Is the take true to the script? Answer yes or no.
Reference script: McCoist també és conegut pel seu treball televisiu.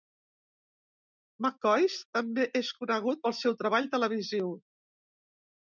yes